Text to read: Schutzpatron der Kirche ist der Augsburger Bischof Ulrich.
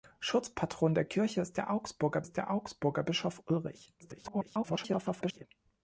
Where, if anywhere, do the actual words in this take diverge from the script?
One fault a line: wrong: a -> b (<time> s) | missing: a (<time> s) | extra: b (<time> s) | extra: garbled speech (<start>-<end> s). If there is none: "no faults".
extra: ist der Augsburger (2.2 s)
extra: garbled speech (4.0-5.4 s)